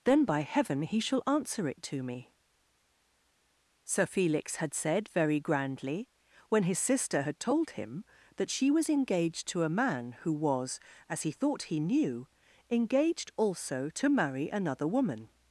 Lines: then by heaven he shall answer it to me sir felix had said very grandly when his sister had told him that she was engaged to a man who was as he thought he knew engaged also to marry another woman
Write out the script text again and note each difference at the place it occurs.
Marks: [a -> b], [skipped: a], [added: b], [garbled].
then by heaven he shall answer it to me sir felix had said very grandly when his sister had told him that she was engaged to a man who was as he thought he knew engaged also to marry another woman